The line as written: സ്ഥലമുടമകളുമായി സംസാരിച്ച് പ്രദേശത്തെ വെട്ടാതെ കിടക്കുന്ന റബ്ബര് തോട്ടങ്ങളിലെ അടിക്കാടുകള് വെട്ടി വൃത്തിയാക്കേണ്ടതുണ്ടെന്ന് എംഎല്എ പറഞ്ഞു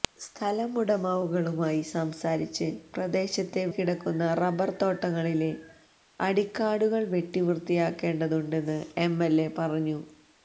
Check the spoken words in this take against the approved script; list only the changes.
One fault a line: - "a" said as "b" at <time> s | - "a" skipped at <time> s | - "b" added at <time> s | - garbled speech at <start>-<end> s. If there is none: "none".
- "വെട്ടാതെ" skipped at 3.6 s